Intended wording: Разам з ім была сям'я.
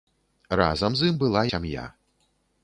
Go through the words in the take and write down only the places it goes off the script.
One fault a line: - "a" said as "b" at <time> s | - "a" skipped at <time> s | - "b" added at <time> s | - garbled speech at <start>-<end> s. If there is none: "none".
none